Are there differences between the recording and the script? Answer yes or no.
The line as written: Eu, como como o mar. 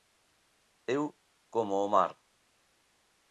yes